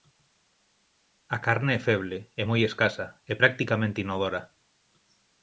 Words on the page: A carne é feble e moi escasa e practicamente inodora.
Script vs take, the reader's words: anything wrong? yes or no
no